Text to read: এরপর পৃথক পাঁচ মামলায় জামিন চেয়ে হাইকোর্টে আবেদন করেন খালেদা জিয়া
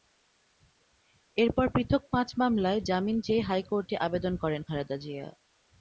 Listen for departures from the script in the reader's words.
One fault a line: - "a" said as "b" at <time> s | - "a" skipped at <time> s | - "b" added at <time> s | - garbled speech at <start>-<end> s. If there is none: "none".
none